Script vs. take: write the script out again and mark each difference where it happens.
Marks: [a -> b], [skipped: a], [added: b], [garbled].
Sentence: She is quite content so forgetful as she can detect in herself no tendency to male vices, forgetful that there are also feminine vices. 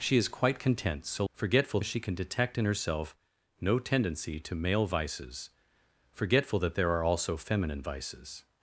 She is quite content so forgetful as she can detect in herself no tendency to male vices, forgetful that there are also feminine vices.